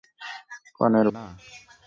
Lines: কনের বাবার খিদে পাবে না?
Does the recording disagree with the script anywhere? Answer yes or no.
yes